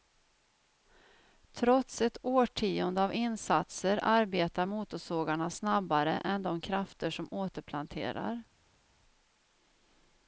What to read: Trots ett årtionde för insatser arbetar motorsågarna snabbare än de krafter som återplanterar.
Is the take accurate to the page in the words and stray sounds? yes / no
no